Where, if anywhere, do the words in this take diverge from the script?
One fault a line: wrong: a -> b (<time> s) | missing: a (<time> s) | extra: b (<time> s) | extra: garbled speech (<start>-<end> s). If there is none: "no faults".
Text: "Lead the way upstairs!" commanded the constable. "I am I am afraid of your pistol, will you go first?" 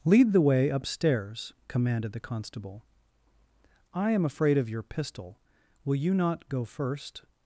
missing: I am (4.2 s)
extra: not (6.1 s)